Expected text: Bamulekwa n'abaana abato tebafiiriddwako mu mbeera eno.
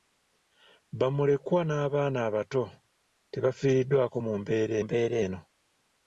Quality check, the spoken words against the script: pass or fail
fail